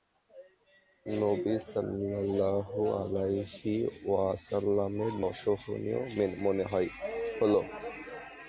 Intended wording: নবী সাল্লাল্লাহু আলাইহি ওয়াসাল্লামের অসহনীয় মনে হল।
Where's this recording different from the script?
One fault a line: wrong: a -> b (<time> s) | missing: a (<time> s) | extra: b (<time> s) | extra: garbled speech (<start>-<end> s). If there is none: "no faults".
no faults